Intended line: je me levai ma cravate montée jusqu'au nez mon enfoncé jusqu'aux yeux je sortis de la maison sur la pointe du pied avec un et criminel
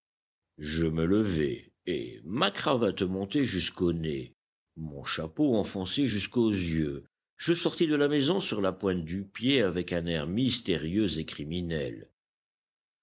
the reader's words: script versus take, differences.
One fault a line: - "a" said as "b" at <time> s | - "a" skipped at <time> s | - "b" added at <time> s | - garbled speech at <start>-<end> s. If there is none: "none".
- "et" added at 1.9 s
- "chapeau" added at 5.0 s
- "air mystérieux" added at 10.1 s